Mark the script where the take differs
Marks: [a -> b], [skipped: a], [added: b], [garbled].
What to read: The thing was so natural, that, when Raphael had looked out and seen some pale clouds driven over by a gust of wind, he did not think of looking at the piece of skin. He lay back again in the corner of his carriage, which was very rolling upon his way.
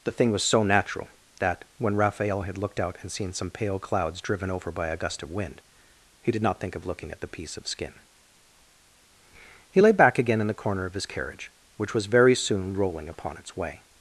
The thing was so natural, that, when Raphael had looked out and seen some pale clouds driven over by a gust of wind, he did not think of looking at the piece of skin. He lay back again in the corner of his carriage, which was very [added: soon] rolling upon [his -> its] way.